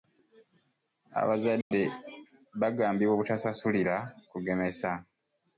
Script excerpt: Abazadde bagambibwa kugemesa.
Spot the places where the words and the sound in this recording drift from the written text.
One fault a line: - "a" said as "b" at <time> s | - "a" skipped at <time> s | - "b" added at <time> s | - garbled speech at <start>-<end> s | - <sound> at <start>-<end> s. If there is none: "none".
- dropout at 1.6-1.7 s
- "obutasasulira" added at 3.2 s